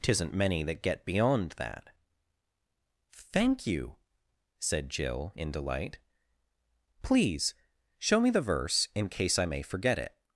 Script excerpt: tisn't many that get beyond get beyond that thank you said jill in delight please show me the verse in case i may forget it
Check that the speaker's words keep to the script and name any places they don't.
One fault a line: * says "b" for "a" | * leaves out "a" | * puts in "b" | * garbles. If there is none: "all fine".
* leaves out "get beyond"